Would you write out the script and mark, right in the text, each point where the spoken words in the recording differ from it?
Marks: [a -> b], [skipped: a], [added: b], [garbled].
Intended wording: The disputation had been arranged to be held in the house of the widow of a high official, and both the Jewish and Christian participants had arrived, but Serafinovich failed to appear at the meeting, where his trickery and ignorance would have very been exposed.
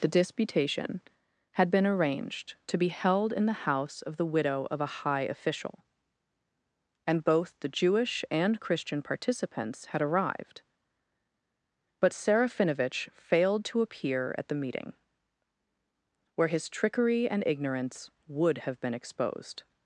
The disputation had been arranged to be held in the house of the widow of a high official, and both the Jewish and Christian participants had arrived, but Serafinovich failed to appear at the meeting, where his trickery and ignorance would have [skipped: very] been exposed.